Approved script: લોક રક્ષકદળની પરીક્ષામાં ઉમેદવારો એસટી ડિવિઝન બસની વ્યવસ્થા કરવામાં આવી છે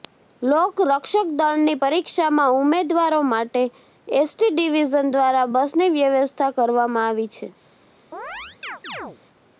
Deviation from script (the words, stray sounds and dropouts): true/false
true